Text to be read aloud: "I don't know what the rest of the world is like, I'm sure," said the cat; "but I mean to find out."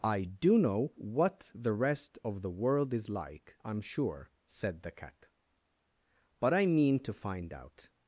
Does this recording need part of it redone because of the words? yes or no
yes